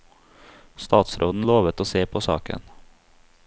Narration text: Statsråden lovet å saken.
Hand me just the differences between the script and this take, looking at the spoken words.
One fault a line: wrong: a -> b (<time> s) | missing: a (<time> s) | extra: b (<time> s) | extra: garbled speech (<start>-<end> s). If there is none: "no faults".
extra: se på (1.8 s)